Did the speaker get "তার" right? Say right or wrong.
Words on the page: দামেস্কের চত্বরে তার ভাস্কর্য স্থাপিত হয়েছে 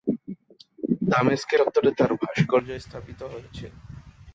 right